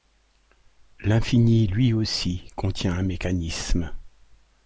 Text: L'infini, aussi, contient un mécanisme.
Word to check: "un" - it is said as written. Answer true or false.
true